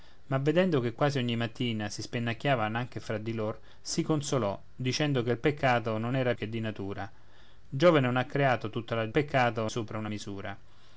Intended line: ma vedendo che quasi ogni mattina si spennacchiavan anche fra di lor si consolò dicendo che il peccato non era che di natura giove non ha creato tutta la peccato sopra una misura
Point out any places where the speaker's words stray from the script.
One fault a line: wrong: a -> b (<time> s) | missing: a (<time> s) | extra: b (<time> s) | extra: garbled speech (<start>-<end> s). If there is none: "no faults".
no faults